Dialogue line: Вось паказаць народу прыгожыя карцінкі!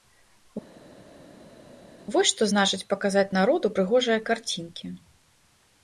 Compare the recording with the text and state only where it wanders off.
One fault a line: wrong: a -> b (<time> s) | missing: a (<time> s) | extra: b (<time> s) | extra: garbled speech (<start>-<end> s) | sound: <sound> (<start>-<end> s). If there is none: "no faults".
extra: што значыць (2.3 s)